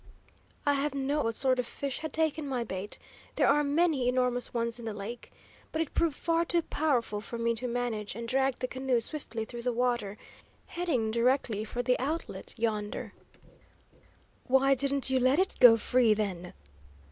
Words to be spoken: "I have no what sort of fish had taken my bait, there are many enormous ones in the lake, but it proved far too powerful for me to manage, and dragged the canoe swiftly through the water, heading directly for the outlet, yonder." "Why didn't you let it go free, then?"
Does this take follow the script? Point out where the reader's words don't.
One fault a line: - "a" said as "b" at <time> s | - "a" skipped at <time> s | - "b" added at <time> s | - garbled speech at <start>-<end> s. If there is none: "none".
none